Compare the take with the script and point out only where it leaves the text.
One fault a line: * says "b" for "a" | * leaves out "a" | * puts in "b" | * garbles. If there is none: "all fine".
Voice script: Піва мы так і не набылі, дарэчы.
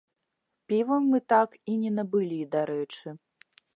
all fine